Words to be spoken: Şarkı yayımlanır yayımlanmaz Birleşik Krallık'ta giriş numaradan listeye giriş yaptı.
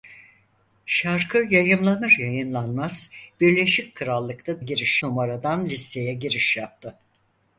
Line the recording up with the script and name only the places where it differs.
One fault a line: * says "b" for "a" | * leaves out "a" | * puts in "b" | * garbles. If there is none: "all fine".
all fine